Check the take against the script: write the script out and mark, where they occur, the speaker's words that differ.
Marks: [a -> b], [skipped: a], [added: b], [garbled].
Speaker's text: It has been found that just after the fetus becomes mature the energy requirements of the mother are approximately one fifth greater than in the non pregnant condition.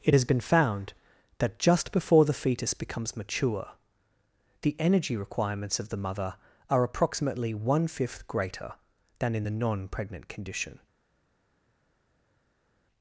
It has been found that just [after -> before] the fetus becomes mature the energy requirements of the mother are approximately one fifth greater than in the non pregnant condition.